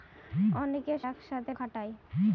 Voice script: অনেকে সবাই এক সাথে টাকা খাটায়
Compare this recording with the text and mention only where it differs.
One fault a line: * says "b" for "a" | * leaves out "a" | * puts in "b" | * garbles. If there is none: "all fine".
* leaves out "সবাই"
* leaves out "টাকা"